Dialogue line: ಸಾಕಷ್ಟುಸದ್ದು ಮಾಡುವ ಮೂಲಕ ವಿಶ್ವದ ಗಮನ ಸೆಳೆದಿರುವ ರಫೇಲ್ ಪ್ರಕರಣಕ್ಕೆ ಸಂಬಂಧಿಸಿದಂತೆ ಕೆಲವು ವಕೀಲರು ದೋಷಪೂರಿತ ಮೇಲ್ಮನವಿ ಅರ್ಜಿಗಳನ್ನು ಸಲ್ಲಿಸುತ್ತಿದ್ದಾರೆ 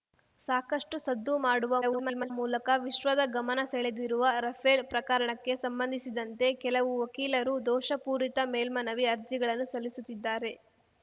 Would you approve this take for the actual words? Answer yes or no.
no